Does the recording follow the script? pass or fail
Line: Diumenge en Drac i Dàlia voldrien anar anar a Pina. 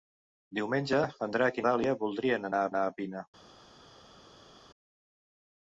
pass